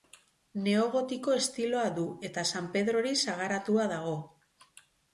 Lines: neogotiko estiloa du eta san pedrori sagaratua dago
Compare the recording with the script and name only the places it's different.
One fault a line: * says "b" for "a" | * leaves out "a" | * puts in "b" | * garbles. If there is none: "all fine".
all fine